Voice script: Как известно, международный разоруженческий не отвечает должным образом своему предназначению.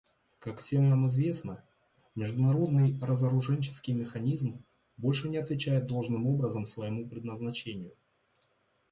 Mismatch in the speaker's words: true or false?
true